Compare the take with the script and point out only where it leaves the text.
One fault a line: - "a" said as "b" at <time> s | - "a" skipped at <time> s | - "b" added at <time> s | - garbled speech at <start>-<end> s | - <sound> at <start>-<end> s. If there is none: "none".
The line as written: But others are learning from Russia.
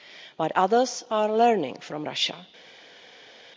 none